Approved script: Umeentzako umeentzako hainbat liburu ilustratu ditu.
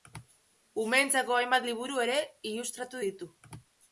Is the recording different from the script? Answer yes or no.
yes